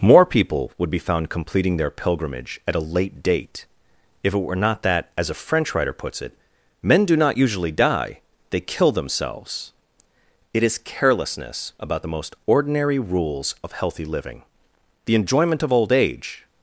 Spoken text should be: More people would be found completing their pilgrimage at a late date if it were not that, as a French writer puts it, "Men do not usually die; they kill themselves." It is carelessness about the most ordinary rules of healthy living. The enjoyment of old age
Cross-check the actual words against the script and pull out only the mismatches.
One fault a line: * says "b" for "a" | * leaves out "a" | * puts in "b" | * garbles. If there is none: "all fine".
all fine